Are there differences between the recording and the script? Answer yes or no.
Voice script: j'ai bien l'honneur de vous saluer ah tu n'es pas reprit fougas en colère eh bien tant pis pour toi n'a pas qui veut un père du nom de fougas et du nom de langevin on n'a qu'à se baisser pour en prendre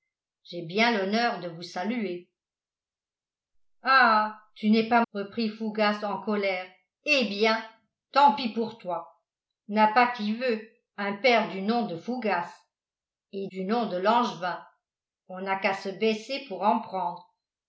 no